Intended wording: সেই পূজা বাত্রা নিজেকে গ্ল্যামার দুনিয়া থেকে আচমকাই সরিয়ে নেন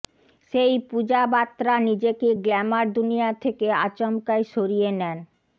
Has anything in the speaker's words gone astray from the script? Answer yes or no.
no